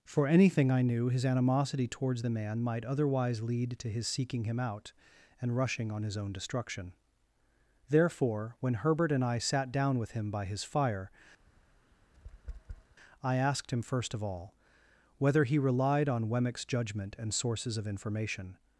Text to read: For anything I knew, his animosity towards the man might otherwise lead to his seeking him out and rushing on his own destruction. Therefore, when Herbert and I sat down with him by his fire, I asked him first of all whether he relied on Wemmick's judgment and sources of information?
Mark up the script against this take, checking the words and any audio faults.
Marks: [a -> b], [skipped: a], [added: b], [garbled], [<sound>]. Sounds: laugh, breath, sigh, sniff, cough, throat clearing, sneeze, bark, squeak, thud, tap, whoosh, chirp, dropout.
For anything I knew, his animosity towards the man might otherwise lead to his seeking him out and rushing on his own destruction. Therefore, when Herbert and I sat down with him by his fire, [tap] I asked him first of all whether he relied on Wemmick's judgment and sources of information?